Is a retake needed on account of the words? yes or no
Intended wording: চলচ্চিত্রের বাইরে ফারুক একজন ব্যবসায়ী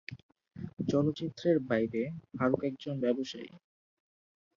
no